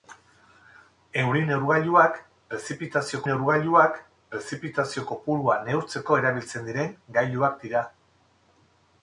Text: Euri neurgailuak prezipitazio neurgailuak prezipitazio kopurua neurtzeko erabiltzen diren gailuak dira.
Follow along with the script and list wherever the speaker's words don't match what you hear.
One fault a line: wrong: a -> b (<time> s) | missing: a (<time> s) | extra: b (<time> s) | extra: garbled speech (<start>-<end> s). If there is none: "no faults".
no faults